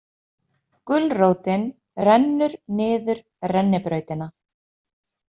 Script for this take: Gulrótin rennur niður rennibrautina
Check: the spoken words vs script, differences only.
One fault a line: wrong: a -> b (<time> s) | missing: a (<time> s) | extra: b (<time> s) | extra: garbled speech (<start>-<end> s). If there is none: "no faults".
no faults